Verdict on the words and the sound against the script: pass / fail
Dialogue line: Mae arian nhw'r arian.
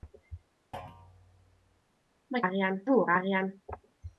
fail